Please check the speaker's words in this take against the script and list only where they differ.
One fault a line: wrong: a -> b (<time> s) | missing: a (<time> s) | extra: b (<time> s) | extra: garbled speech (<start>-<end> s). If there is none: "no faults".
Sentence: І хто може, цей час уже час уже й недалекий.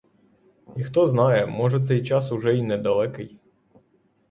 extra: знає (1.1 s)
missing: час уже (2.6 s)